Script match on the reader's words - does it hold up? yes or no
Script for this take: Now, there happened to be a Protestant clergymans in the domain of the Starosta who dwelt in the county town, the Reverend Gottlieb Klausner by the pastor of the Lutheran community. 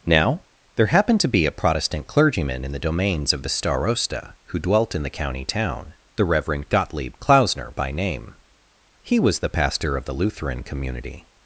no